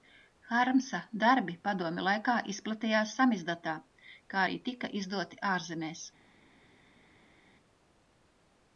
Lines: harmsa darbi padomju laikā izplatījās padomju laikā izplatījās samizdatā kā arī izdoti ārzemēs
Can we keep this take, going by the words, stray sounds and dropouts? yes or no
no